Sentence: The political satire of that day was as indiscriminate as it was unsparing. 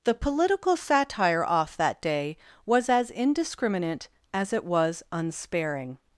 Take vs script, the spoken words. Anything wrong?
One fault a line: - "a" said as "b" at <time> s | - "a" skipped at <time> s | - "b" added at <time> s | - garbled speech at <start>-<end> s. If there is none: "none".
- "of" said as "off" at 1.4 s